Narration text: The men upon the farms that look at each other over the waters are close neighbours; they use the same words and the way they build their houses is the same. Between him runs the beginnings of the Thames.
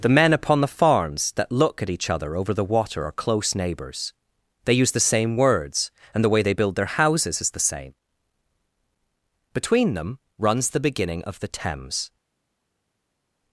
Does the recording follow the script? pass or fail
fail